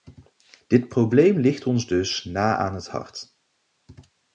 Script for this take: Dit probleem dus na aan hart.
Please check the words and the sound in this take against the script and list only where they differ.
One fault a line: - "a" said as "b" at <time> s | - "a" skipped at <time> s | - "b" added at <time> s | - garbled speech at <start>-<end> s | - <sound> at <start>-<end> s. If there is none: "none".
- "ligt ons" added at 1.4 s
- "het" added at 2.7 s